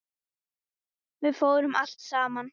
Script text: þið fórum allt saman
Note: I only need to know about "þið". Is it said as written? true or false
false